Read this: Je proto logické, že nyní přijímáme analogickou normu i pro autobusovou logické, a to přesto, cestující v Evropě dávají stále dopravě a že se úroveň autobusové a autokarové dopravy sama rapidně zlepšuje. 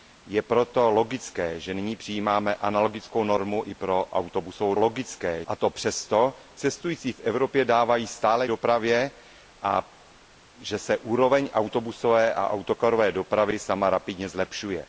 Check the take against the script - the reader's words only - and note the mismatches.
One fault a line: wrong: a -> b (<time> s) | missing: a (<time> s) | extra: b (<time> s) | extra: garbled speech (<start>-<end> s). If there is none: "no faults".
no faults